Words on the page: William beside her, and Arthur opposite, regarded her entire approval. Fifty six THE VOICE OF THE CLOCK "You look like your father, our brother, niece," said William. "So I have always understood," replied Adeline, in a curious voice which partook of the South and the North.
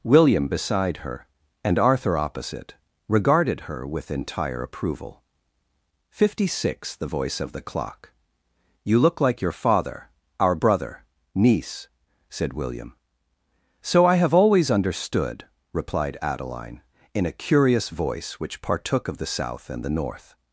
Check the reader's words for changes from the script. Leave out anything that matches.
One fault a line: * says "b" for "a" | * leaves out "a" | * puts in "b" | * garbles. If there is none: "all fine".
* puts in "with"